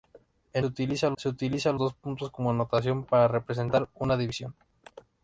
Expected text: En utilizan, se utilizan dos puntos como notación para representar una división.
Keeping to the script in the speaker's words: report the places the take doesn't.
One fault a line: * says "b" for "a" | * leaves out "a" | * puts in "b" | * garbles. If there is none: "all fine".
all fine